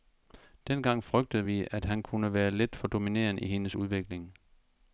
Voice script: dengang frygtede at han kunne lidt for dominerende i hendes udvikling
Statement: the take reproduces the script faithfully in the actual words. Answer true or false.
false